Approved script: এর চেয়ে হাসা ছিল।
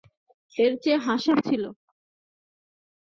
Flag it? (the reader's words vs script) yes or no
no